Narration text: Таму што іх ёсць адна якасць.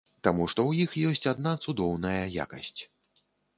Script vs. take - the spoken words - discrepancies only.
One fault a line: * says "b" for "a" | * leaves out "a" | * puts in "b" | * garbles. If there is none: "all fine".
* puts in "ў"
* puts in "цудоўная"